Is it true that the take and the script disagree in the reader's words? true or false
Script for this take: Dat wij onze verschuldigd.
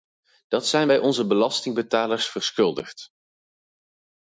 true